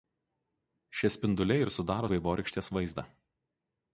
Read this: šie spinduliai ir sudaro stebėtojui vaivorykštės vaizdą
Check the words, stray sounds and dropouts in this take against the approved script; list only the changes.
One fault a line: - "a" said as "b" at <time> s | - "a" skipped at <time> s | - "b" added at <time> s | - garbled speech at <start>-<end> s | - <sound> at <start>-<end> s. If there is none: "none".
- "stebėtojui" skipped at 2.1 s